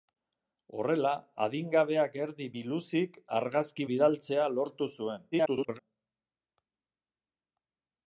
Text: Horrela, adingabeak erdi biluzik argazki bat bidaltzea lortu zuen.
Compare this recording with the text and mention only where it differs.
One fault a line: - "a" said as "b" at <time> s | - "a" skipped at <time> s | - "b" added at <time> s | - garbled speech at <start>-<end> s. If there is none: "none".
- "bat" skipped at 3.9 s
- garbled speech at 5.3-5.8 s